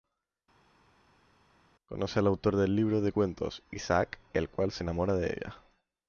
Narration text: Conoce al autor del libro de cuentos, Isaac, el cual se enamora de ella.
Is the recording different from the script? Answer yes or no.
no